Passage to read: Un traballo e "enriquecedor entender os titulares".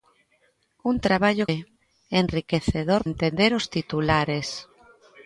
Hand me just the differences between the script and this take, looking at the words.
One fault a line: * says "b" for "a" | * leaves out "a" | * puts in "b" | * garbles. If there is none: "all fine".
all fine